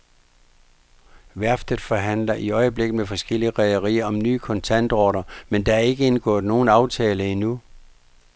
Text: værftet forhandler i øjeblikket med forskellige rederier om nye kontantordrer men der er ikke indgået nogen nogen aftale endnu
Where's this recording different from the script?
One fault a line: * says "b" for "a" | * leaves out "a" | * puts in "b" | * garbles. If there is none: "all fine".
* leaves out "nogen"